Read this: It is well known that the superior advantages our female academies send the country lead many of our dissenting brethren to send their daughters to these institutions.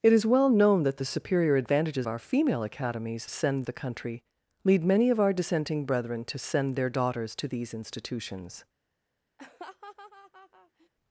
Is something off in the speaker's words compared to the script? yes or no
no